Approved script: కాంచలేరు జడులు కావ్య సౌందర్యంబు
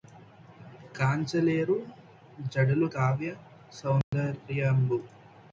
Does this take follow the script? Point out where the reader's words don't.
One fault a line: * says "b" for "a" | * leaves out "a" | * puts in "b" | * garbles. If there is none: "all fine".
all fine